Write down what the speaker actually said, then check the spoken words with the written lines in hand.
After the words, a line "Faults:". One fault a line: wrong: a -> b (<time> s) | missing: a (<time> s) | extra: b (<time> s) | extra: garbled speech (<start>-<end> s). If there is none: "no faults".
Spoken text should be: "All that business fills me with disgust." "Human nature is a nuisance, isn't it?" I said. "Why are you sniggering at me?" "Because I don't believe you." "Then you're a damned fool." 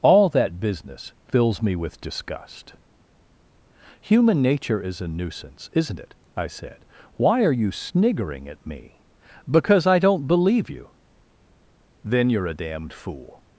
"All that business fills me with disgust." "Human nature is a nuisance, isn't it?" I said. "Why are you sniggering at me?" "Because I don't believe you." "Then you're a damned fool."
Faults:
no faults